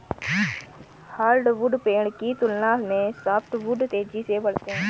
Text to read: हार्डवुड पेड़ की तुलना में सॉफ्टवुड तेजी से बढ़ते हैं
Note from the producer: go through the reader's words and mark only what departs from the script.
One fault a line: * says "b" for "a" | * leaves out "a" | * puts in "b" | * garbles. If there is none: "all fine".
all fine